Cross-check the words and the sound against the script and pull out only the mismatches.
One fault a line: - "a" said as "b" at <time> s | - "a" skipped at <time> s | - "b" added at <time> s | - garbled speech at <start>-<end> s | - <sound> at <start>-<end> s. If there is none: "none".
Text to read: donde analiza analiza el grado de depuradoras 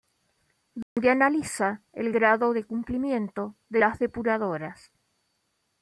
- dropout at 0.8-1.0 s
- "analiza" skipped at 1.8 s
- "cumplimiento de las" added at 2.6 s